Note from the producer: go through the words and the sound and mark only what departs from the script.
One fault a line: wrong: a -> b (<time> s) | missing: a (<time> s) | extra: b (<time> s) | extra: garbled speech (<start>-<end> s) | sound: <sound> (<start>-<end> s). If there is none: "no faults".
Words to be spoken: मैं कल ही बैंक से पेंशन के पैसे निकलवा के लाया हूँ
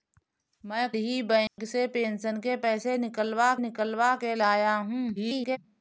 missing: कल (0.9 s)
sound: dropout (1.5-1.6 s)
extra: निकलवा (3.6 s)
extra: garbled speech (5.2-5.6 s)